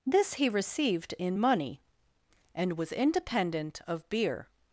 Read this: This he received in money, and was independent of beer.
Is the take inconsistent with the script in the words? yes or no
no